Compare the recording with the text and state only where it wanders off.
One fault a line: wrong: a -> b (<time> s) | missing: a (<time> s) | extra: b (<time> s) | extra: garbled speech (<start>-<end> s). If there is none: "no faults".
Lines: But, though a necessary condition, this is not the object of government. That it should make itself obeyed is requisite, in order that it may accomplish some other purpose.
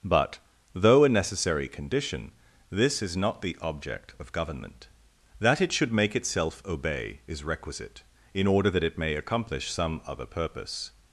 wrong: obeyed -> obey (6.6 s)